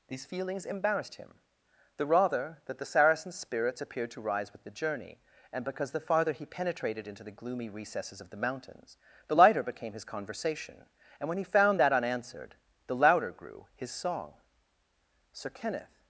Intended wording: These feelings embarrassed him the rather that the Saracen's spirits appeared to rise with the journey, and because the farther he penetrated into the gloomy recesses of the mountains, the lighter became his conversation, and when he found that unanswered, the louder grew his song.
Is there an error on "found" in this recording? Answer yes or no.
no